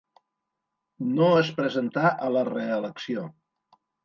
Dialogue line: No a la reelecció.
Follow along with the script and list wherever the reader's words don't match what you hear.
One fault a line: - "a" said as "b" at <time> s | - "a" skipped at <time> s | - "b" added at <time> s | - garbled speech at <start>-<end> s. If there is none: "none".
- "es presentà" added at 1.4 s